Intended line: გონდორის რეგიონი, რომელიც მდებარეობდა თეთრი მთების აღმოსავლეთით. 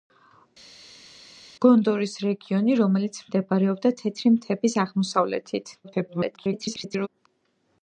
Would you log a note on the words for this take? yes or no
yes